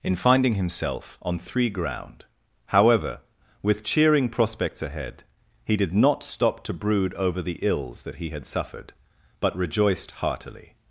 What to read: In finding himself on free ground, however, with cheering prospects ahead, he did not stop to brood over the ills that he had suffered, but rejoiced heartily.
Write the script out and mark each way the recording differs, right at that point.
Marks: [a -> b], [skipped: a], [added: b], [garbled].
In finding himself on [free -> three] ground, however, with cheering prospects ahead, he did not stop to brood over the ills that he had suffered, but rejoiced heartily.